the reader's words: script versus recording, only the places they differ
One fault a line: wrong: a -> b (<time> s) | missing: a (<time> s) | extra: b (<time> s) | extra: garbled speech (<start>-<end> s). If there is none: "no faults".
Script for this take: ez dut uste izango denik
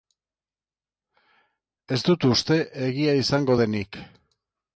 extra: egia (2.9 s)